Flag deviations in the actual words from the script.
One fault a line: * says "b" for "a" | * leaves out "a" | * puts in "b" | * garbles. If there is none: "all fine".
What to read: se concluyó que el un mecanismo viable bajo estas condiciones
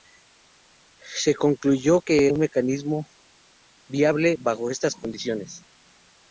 all fine